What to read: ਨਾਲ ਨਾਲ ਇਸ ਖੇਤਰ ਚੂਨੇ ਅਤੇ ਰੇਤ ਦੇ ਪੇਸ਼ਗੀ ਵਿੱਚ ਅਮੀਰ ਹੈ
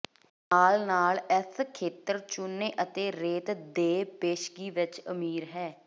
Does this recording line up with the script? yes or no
yes